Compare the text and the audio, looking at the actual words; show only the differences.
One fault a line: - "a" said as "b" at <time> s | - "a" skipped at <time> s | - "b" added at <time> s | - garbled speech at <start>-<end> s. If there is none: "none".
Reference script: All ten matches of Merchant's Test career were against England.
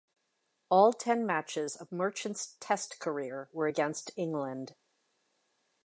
none